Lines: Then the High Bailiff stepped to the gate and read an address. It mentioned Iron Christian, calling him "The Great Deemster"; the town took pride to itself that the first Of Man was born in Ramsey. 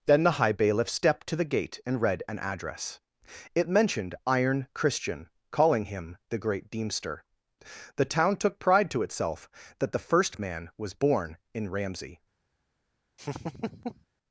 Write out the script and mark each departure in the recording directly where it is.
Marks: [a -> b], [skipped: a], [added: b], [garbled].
Then the High Bailiff stepped to the gate and read an address. It mentioned Iron Christian, calling him "The Great Deemster"; the town took pride to itself that the first Of Man was born in Ramsey.